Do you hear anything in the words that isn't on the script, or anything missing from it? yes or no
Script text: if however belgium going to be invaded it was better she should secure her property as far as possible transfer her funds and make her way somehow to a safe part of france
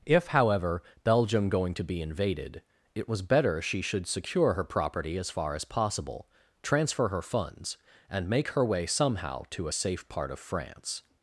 no